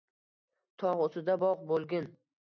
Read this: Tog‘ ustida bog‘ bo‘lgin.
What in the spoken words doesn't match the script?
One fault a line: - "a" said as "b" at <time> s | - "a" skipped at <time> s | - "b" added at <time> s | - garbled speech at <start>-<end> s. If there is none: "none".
none